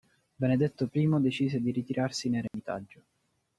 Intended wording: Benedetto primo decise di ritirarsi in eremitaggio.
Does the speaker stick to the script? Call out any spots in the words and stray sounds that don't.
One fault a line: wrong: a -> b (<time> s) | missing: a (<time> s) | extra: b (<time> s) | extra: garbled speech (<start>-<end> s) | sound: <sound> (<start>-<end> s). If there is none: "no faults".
sound: dropout (2.5-2.5 s)